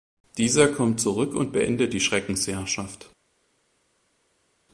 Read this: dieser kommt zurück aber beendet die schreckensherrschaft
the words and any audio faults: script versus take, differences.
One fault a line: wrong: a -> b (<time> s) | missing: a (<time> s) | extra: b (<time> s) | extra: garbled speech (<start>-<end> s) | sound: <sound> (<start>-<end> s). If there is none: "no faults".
wrong: aber -> und (1.4 s)